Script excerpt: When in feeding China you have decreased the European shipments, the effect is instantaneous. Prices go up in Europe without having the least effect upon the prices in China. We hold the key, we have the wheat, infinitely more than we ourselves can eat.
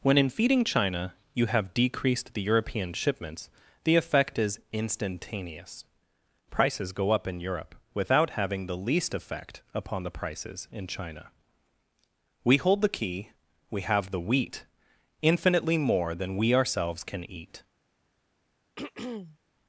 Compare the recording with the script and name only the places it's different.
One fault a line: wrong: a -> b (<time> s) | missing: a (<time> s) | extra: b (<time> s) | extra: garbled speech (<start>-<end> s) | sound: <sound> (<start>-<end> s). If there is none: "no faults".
sound: throat clearing (18.8-19.4 s)